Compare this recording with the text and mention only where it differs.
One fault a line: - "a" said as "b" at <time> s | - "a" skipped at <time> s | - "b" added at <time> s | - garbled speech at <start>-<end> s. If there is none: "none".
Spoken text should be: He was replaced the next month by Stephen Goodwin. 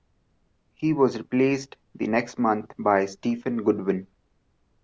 none